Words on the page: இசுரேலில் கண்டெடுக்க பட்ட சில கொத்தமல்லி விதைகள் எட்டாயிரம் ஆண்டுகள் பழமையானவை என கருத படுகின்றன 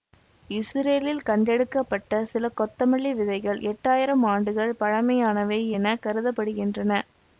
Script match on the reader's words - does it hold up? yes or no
yes